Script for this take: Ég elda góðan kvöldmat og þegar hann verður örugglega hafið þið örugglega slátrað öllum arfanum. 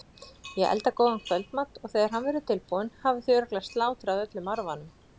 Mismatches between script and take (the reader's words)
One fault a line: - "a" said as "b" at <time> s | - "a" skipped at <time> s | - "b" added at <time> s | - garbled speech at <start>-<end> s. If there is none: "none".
- "örugglega" said as "tilbúinn" at 2.5 s